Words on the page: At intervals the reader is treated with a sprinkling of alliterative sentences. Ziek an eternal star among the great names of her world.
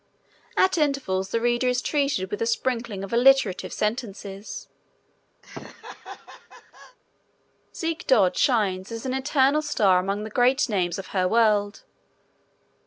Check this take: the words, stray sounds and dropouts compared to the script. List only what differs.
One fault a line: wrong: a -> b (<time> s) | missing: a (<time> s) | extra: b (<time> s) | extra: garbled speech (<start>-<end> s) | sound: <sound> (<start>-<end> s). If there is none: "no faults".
sound: laugh (5.4-7.0 s)
extra: dod shines as (8.1 s)